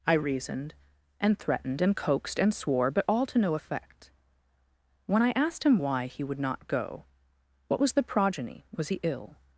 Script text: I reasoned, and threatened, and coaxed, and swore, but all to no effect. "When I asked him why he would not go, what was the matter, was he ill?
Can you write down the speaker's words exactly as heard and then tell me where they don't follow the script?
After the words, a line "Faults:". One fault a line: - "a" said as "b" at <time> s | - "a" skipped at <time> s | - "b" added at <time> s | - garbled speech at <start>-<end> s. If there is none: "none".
I reasoned, and threatened, and coaxed, and swore, but all to no effect. "When I asked him why he would not go, what was the progeny, was he ill?
Faults:
- "matter" said as "progeny" at 8.0 s